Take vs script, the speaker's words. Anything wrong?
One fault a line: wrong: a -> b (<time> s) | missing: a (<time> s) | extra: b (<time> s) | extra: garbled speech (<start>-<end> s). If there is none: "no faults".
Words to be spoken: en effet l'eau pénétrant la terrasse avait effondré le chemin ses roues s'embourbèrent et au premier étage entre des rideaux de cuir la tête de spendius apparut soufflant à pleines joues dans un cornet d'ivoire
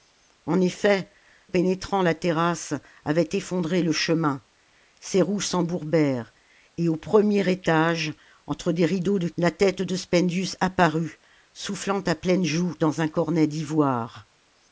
missing: l'eau (1.1 s)
missing: cuir (9.3 s)